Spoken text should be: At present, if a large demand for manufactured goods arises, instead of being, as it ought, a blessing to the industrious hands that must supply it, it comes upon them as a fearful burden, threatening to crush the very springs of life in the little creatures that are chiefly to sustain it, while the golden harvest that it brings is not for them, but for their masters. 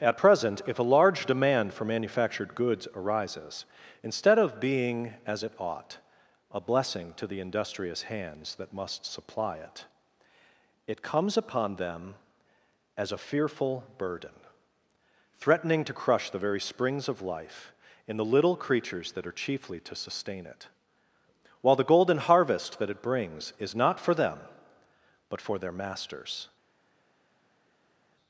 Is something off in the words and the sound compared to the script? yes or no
no